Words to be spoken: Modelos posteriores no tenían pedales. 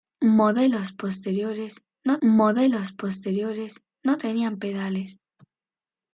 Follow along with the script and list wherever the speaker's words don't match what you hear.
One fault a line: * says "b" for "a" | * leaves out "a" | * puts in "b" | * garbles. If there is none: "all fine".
* puts in "modelos posteriores no"